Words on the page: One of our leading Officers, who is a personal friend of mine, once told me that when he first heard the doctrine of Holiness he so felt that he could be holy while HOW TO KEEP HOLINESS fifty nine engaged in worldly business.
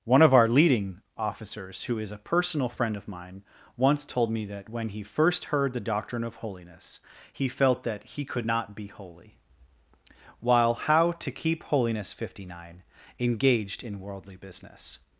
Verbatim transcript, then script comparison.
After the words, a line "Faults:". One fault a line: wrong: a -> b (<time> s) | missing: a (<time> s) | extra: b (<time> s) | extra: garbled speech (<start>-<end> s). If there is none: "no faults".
One of our leading Officers, who is a personal friend of mine, once told me that when he first heard the doctrine of Holiness he felt that he could not be holy while HOW TO KEEP HOLINESS fifty nine engaged in worldly business.
Faults:
missing: so (7.5 s)
extra: not (8.4 s)